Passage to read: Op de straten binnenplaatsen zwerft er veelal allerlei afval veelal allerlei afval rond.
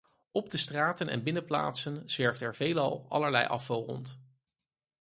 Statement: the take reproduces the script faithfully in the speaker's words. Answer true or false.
false